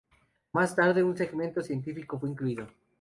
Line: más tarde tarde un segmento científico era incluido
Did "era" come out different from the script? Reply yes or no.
yes